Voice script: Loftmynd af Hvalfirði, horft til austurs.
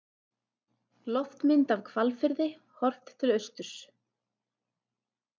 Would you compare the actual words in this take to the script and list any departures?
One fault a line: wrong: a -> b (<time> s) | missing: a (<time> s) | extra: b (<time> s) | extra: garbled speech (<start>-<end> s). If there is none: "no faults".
no faults